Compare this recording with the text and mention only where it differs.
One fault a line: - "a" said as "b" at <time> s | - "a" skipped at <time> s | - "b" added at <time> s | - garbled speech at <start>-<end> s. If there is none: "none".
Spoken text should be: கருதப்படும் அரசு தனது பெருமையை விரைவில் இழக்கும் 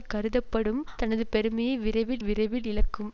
- "அரசு" skipped at 0.8 s
- "விரைவில்" added at 2.2 s